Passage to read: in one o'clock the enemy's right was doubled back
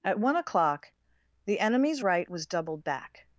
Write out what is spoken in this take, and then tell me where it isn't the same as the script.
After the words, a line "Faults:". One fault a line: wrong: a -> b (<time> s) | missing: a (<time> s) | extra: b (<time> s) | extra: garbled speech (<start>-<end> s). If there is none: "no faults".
at one o'clock the enemy's right was doubled back
Faults:
wrong: in -> at (0.0 s)